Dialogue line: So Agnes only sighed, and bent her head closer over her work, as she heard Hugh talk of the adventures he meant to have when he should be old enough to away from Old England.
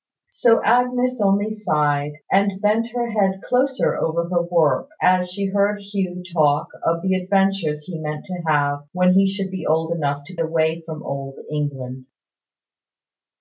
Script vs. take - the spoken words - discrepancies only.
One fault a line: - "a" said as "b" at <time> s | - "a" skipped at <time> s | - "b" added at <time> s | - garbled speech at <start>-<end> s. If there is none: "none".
none